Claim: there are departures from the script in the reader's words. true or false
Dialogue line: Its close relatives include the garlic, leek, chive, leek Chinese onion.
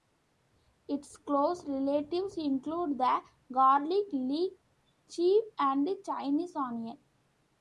true